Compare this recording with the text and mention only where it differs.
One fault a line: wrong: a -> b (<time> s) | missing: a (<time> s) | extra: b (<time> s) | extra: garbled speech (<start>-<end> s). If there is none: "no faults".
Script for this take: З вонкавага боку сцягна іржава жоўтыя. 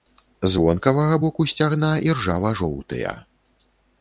no faults